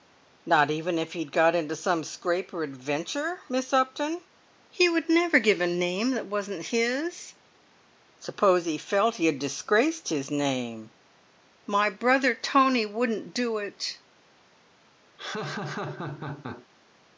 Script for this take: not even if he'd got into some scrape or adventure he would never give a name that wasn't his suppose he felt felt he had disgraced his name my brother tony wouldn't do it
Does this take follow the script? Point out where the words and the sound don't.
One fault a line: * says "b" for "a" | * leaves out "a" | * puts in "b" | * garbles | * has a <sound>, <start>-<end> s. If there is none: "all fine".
* puts in "miss upton"
* leaves out "felt"
* has a laugh, 15.2-16.7 s